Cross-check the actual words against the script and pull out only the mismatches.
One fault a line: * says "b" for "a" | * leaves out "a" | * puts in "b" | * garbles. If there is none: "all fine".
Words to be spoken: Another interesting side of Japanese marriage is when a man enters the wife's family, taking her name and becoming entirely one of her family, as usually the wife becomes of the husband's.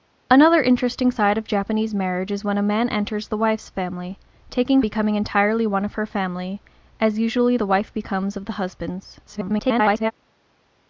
* leaves out "her name and"
* garbles